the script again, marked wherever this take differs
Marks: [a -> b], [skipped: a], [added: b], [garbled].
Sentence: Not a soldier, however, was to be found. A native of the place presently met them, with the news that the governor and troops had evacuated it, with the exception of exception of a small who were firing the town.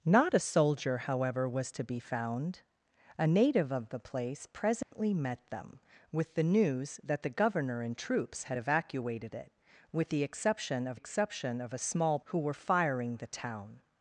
Not a soldier, however, was to be found. A native of the place presently met them, with the news that the governor and troops had evacuated it, with the exception of exception of a small who were firing the town.